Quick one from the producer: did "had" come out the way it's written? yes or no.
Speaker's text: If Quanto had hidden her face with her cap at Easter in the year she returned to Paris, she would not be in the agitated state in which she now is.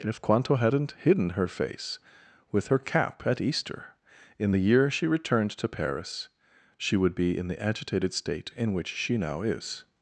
no